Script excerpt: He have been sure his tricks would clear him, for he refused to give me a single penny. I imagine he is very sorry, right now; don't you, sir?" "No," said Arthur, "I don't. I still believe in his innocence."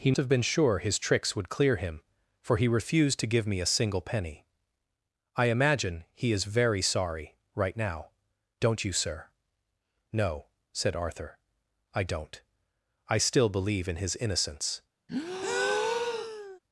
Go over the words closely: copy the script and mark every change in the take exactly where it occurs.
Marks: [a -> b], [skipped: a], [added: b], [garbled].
He have been sure his tricks would clear him, for he refused to give me a single penny. I imagine he is very sorry, right now; don't you, sir?" "No," said Arthur, "I don't. I still believe in his innocence."